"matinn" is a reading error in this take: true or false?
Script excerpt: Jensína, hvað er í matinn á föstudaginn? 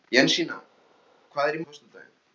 true